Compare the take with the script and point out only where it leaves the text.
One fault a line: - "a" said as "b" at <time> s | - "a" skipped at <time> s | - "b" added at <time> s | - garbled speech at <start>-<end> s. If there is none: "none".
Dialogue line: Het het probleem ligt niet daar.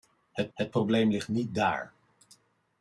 none